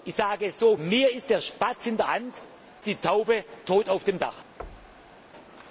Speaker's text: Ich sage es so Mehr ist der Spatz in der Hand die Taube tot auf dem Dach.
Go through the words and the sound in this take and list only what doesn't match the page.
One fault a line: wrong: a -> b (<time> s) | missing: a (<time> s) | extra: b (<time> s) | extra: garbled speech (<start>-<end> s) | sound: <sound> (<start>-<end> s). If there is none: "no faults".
sound: thud (4.6-5.2 s)